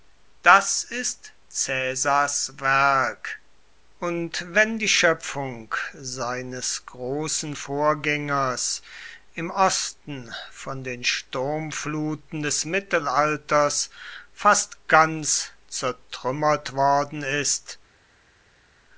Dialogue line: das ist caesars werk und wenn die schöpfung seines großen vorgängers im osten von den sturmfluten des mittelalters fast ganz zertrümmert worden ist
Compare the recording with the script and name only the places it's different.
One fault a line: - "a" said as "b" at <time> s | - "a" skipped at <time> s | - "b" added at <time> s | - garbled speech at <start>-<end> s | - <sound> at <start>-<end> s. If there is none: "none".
none